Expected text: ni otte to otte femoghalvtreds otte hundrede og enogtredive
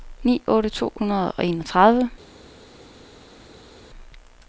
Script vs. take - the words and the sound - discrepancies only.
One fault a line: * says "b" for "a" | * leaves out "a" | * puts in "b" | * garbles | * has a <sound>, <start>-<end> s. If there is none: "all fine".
* leaves out "otte femoghalvtreds otte"